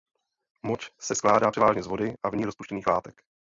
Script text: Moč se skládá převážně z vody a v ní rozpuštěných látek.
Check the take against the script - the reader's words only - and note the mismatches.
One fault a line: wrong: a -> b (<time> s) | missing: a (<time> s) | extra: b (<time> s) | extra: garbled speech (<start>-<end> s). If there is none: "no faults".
no faults